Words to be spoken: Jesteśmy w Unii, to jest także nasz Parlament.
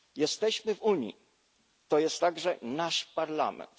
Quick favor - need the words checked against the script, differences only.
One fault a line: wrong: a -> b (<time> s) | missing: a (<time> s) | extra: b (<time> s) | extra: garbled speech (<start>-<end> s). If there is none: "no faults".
no faults